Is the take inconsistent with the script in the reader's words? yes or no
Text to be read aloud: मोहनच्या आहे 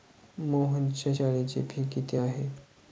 yes